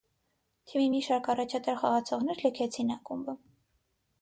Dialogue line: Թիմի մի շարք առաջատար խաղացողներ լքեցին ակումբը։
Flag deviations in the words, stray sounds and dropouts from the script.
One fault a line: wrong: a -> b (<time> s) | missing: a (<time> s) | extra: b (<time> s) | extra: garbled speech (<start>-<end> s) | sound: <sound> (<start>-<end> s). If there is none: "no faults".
no faults